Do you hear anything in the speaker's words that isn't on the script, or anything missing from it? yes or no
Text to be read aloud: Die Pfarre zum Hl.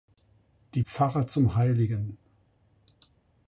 no